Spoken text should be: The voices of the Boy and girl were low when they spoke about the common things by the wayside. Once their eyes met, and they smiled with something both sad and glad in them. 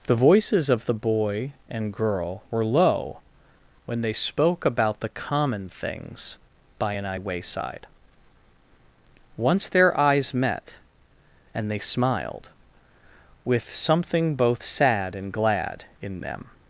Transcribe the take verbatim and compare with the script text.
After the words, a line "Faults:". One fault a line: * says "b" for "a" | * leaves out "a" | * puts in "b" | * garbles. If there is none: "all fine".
The voices of the Boy and girl were low when they spoke about the common things by an wayside. Once their eyes met, and they smiled with something both sad and glad in them.
Faults:
* says "an" for "the"